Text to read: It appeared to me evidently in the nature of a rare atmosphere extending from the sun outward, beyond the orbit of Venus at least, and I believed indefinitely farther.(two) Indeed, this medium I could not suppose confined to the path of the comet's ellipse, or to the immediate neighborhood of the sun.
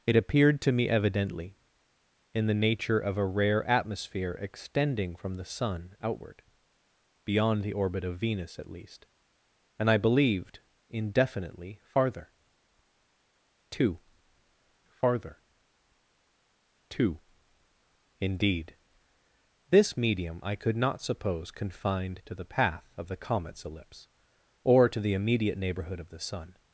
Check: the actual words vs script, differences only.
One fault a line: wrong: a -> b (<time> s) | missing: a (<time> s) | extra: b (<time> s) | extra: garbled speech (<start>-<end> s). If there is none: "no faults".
extra: farther.(two (14.9 s)